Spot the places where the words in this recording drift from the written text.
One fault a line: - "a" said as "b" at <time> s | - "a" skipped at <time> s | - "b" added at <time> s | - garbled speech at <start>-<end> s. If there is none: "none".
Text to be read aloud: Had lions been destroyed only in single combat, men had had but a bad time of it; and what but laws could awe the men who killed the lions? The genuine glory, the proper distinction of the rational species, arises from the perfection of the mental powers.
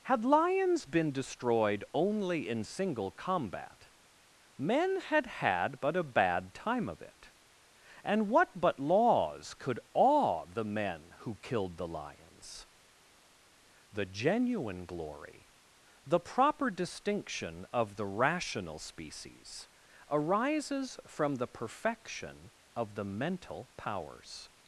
none